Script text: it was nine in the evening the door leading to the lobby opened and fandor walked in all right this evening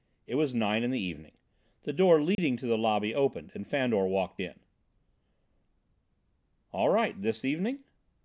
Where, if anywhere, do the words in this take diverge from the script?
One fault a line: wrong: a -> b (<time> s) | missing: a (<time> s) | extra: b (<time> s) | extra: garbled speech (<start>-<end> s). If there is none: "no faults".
no faults